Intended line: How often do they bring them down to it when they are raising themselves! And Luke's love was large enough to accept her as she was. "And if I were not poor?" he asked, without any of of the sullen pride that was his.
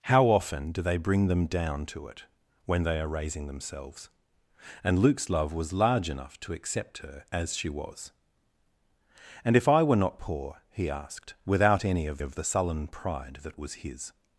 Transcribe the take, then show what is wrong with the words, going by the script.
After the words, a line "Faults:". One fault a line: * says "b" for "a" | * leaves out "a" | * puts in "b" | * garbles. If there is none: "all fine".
How often do they bring them down to it when they are raising themselves! And Luke's love was large enough to accept her as she was. "And if I were not poor?" he asked, without any of of the sullen pride that was his.
Faults:
all fine